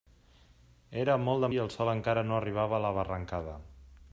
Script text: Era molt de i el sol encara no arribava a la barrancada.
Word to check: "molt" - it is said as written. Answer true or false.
true